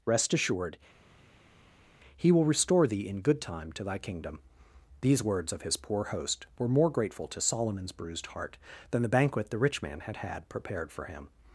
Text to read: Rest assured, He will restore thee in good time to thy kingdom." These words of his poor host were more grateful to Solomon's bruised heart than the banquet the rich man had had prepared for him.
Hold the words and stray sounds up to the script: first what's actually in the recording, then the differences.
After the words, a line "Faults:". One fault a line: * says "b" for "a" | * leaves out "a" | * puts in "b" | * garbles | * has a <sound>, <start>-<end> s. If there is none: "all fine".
Rest assured, He will restore thee in good time to thy kingdom." These words of his poor host were more grateful to Solomon's bruised heart than the banquet the rich man had had prepared for him.
Faults:
all fine